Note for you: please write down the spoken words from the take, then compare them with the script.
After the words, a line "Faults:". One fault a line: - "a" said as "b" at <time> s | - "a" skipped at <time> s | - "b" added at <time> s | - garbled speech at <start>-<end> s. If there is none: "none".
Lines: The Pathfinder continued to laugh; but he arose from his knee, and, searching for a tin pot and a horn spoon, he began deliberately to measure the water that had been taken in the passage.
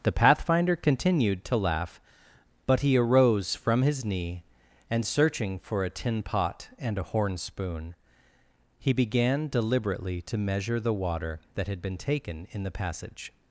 The Pathfinder continued to laugh; but he arose from his knee, and, searching for a tin pot and a horn spoon, he began deliberately to measure the water that had been taken in the passage.
Faults:
none